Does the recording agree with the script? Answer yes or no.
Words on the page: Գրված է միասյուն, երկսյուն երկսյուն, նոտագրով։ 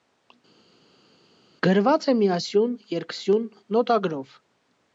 no